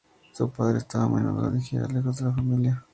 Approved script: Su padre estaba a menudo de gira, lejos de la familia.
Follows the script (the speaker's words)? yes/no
yes